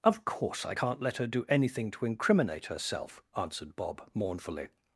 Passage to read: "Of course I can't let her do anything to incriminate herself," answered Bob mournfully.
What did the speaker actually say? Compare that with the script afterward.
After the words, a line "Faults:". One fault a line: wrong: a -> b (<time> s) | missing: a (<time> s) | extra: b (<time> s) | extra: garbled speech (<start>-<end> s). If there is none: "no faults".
"Of course I can't let her do anything to incriminate herself," answered Bob mournfully.
Faults:
no faults